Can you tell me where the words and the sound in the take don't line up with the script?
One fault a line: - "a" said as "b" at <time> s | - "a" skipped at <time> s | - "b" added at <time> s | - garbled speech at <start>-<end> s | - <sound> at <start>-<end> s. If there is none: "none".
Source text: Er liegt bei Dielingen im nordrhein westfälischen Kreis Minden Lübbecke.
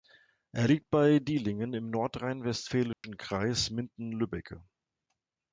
- dropout at 2.9-3.0 s